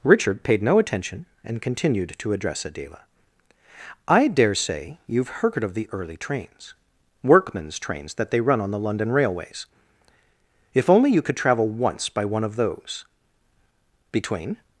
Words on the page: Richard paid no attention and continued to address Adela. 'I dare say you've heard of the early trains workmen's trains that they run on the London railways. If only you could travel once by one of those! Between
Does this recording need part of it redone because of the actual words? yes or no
no